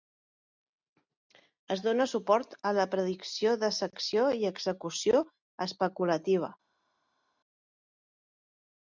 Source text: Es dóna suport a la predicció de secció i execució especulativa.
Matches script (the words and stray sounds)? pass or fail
pass